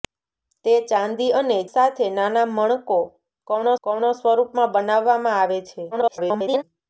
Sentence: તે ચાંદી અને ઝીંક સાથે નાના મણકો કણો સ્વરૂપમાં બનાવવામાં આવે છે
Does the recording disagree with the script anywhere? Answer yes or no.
yes